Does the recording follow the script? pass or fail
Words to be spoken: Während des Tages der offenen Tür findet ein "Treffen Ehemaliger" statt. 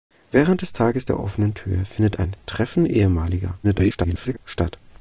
fail